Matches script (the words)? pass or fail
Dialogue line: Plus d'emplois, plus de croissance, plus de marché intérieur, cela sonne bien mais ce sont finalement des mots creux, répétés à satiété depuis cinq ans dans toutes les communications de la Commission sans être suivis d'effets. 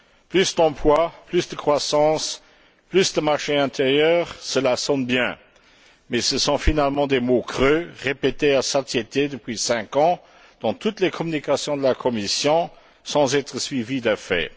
pass